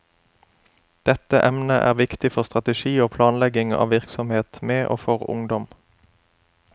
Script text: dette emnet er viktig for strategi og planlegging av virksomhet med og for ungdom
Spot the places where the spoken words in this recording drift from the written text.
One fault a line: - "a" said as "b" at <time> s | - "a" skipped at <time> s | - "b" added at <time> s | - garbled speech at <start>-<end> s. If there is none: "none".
none